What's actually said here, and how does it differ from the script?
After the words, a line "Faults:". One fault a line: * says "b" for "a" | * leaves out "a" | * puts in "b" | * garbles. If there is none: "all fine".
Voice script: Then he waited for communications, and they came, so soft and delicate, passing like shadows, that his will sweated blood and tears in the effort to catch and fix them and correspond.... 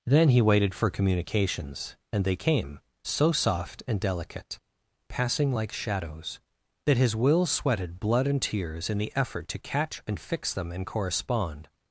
Then he waited for communications, and they came, so soft and delicate, passing like shadows, that his will sweated blood and tears in the effort to catch and fix them and correspond....
Faults:
all fine